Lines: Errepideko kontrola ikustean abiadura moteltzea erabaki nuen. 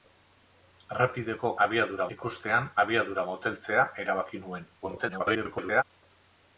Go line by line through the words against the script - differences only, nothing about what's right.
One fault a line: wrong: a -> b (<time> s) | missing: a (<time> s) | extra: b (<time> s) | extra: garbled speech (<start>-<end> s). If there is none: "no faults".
wrong: kontrola -> abiadura (1.7 s)
extra: garbled speech (4.8-5.8 s)